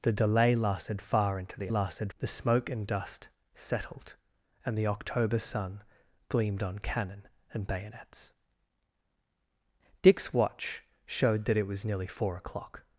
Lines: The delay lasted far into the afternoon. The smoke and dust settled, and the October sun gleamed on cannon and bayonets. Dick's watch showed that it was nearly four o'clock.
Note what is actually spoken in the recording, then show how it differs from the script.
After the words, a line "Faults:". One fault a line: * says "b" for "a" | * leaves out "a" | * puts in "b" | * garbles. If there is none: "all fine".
The delay lasted far into the lasted. The smoke and dust settled, and the October sun gleamed on cannon and bayonets. Dick's watch showed that it was nearly four o'clock.
Faults:
* says "lasted" for "afternoon"